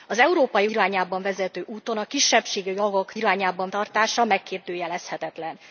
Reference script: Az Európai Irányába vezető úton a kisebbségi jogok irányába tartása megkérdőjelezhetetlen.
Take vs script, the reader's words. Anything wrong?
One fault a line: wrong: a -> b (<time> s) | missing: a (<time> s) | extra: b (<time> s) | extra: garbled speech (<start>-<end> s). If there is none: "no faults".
no faults